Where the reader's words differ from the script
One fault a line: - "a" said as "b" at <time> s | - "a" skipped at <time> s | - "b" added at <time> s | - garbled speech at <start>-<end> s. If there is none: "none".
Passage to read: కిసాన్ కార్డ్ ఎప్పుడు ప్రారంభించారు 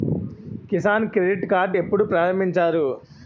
- "క్రెడిట్" added at 1.1 s